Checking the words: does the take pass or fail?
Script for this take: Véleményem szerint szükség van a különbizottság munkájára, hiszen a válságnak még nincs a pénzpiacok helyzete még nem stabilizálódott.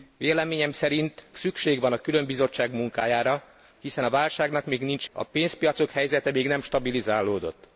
pass